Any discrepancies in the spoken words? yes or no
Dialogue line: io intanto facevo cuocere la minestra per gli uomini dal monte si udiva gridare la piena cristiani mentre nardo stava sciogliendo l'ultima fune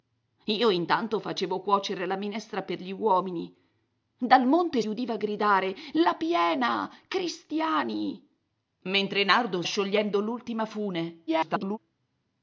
yes